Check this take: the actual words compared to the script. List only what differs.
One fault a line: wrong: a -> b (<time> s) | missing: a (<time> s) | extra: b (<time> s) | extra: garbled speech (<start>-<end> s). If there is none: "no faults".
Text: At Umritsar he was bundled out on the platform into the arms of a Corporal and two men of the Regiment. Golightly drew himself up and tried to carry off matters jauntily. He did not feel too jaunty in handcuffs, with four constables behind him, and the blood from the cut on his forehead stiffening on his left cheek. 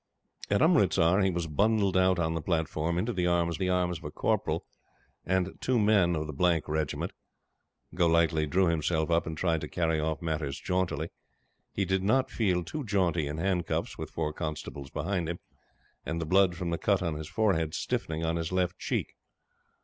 extra: the arms (3.6 s)